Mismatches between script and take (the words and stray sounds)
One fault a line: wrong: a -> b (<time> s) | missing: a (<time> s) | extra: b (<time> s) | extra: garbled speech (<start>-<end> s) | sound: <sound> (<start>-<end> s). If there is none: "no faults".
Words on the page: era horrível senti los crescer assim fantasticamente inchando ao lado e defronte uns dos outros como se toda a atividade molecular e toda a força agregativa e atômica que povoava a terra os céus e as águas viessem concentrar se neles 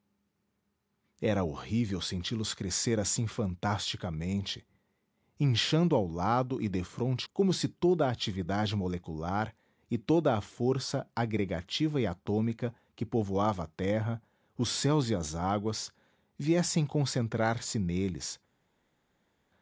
missing: uns dos outros (7.3 s)